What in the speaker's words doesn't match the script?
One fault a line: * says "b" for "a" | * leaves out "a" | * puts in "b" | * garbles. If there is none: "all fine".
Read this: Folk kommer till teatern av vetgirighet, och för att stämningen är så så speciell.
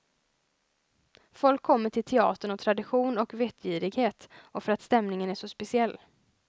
* puts in "tradition och"
* leaves out "så"